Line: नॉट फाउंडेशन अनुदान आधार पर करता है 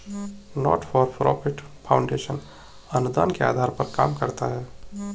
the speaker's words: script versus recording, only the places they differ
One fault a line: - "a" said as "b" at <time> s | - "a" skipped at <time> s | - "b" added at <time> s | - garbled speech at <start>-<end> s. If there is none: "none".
- "फॉर प्रॉफिट" added at 0.8 s
- "के" added at 3.3 s
- "काम" added at 3.9 s